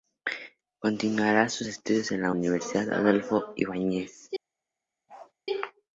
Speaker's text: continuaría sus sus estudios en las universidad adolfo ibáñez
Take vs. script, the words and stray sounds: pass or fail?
fail